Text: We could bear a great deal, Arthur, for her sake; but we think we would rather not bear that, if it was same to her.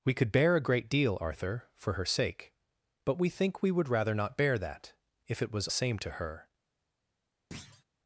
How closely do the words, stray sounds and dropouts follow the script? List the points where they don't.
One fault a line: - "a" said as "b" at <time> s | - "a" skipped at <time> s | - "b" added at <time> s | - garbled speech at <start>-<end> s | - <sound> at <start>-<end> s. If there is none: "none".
- thud at 7.5-7.8 s